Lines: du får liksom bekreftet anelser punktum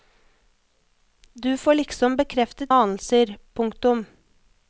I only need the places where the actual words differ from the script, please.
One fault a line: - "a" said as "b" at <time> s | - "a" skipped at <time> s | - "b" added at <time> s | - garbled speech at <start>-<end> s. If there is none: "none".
none